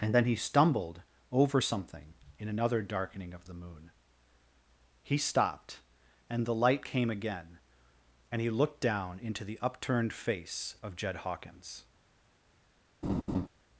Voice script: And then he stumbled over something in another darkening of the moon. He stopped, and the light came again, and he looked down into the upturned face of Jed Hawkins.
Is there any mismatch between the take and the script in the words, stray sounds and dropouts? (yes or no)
yes